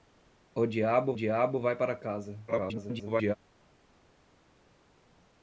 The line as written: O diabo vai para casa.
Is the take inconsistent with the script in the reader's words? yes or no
yes